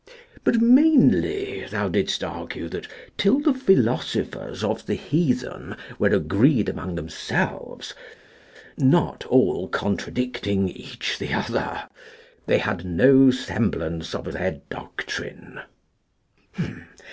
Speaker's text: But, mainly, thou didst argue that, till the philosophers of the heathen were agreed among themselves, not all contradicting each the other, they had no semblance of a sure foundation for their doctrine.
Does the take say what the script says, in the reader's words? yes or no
no